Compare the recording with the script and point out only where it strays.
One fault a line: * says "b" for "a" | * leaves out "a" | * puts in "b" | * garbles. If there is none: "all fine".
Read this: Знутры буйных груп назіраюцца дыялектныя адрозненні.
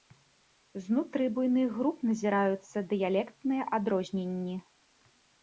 all fine